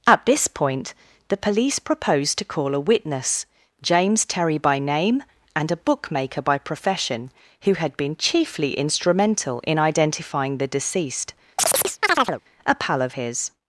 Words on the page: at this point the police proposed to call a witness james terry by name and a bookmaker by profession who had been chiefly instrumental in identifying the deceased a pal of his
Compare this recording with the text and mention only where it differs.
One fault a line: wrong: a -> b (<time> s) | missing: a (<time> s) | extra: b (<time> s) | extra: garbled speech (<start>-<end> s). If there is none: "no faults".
no faults